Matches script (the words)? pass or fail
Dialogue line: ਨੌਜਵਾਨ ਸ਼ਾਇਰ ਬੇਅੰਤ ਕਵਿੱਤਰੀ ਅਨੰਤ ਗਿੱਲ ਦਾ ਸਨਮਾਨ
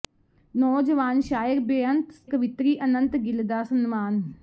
pass